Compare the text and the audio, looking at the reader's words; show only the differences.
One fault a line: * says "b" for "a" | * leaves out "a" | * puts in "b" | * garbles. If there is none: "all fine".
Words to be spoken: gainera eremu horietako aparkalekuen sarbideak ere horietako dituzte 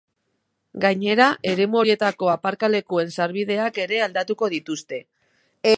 * says "aldatuko" for "horietako"